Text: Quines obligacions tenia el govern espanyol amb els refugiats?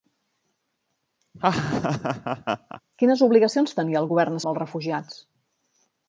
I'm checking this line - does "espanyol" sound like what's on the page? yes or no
no